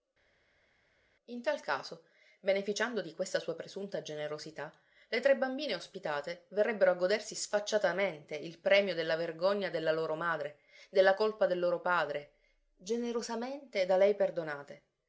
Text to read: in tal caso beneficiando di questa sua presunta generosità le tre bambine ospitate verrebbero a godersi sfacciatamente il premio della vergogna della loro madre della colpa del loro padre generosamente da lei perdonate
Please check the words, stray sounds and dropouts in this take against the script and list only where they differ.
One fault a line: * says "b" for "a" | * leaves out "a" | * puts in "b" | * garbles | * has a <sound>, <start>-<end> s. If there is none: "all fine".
all fine